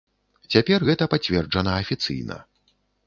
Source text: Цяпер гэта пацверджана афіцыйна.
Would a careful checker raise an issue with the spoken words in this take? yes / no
no